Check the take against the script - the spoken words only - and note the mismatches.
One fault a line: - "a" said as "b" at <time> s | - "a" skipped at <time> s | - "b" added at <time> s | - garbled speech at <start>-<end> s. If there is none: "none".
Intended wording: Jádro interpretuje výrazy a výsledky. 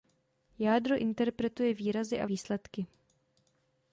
none